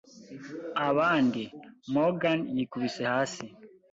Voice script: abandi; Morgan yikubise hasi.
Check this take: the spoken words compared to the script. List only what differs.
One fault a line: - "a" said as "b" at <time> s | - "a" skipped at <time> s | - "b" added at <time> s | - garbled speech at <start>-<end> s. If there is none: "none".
none